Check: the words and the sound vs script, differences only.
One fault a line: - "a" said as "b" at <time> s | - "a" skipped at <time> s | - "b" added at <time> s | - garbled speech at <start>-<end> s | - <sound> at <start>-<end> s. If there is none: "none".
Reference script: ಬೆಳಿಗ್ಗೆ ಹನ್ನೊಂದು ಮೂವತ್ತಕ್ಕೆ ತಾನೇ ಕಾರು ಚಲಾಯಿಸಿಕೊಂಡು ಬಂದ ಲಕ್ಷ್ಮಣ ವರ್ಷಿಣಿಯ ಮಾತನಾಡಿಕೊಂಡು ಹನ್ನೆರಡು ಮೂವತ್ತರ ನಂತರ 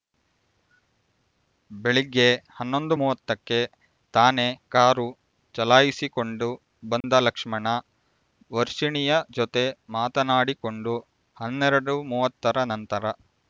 - dropout at 7.0-7.0 s
- "ಜೊತೆ" added at 9.3 s